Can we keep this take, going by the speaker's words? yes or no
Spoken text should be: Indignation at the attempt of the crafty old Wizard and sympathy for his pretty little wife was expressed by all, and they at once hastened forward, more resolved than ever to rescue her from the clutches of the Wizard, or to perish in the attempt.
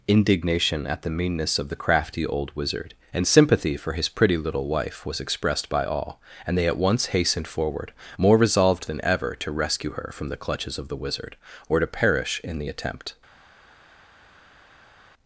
no